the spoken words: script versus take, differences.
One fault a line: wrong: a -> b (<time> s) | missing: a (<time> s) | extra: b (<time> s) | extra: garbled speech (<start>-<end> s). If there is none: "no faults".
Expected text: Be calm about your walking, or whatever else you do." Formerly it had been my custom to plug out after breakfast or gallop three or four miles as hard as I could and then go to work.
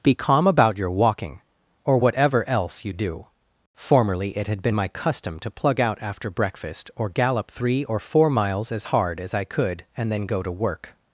no faults